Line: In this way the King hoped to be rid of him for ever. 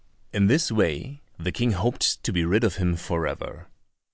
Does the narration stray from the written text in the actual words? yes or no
no